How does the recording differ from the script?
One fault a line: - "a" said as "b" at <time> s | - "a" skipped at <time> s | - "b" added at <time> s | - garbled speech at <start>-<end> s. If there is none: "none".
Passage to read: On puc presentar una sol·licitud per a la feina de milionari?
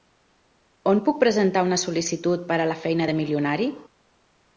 none